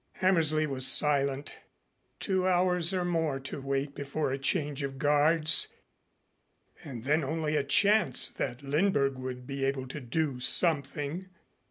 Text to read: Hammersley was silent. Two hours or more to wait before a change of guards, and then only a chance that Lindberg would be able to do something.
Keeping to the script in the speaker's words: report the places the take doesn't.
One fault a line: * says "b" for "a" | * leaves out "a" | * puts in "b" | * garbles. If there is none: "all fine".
all fine